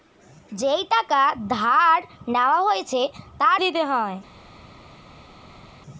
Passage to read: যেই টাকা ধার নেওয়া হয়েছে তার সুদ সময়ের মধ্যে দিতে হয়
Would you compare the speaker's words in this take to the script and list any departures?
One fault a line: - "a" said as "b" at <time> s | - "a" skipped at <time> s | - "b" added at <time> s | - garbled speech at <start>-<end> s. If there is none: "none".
- "সুদ সময়ের মধ্যে" skipped at 3.6 s